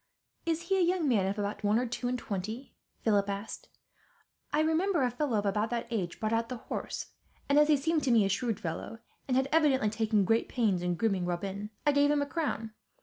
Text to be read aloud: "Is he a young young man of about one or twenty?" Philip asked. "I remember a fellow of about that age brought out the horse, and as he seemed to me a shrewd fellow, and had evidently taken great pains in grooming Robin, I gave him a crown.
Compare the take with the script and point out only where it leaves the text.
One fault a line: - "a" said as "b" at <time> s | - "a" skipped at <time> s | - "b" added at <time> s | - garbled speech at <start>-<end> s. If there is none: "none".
- "young" skipped at 1.1 s
- "two and" added at 1.8 s